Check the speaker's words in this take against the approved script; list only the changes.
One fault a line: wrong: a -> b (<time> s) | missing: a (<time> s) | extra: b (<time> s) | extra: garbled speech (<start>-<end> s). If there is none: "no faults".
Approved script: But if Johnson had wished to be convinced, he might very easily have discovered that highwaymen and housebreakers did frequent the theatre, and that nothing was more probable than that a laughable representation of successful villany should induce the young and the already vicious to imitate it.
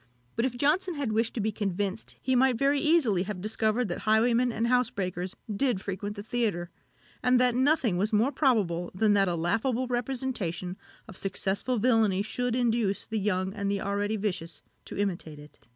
no faults